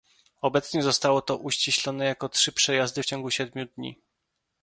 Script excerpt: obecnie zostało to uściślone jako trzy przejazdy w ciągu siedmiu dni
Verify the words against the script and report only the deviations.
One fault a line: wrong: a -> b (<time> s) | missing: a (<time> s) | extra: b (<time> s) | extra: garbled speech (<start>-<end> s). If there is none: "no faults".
no faults